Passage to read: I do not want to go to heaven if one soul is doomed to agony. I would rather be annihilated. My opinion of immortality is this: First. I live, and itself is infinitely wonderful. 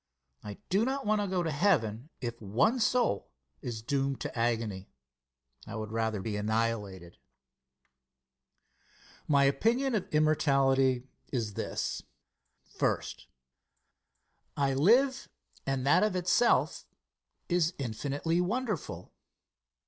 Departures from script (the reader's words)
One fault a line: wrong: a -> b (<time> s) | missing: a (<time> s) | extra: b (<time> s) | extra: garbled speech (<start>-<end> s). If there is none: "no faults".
extra: that of (15.8 s)